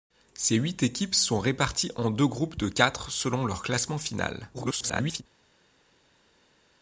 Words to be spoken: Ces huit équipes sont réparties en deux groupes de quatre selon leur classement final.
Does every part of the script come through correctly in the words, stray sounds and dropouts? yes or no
no